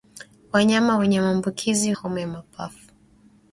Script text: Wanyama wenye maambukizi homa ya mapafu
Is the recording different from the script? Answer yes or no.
no